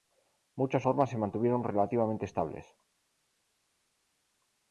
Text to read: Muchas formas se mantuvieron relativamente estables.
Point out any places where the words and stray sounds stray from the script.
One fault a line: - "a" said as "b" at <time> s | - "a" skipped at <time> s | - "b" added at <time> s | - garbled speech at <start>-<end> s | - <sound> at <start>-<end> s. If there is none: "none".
none